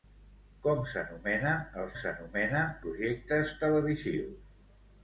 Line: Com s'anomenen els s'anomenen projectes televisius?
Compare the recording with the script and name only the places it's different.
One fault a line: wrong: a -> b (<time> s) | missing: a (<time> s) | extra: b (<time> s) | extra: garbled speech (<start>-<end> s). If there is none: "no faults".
no faults